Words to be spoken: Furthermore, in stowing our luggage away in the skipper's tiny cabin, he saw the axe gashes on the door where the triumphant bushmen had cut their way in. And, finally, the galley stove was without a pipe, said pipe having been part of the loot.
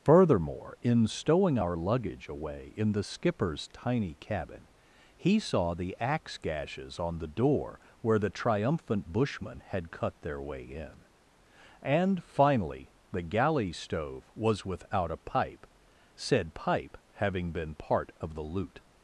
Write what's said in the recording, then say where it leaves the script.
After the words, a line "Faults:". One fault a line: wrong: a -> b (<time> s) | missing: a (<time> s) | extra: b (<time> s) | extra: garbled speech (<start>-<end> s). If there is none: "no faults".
Furthermore, in stowing our luggage away in the skipper's tiny cabin, he saw the axe gashes on the door where the triumphant bushmen had cut their way in. And, finally, the galley stove was without a pipe, said pipe having been part of the loot.
Faults:
no faults